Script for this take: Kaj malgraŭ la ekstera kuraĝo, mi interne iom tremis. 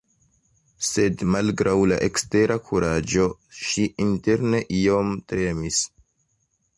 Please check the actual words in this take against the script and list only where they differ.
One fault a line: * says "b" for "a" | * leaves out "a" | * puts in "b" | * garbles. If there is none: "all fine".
* says "Sed" for "Kaj"
* says "ŝi" for "mi"